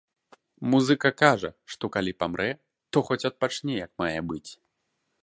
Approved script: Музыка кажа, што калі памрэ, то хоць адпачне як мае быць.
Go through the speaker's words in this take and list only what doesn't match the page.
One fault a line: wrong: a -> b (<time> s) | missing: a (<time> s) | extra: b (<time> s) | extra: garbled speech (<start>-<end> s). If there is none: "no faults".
no faults